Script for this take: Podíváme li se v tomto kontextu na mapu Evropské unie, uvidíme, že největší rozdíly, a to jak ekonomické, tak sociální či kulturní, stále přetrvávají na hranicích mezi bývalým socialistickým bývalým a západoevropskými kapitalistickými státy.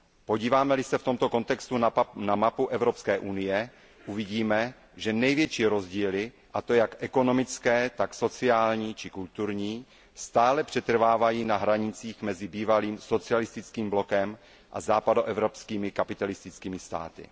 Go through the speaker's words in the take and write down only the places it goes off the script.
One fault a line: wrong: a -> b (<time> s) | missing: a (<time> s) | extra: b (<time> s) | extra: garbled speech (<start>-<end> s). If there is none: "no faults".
wrong: bývalým -> blokem (13.9 s)